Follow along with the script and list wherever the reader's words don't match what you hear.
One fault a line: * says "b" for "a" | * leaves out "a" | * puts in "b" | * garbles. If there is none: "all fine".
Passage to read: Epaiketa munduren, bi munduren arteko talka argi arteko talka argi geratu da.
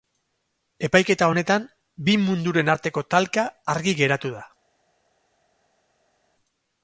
* says "honetan" for "munduren"
* leaves out "arteko talka argi"